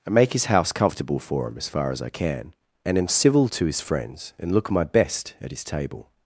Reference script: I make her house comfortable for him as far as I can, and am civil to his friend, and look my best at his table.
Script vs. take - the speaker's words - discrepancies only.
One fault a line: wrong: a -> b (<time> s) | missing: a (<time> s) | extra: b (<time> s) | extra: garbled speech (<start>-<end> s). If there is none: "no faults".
wrong: her -> his (0.3 s)
wrong: friend -> friends (3.8 s)